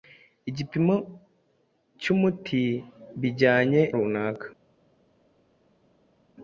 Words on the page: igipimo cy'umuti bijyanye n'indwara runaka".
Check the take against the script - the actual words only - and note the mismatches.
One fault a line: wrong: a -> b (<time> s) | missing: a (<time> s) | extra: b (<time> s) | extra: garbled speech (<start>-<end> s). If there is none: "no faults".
missing: n'indwara (3.8 s)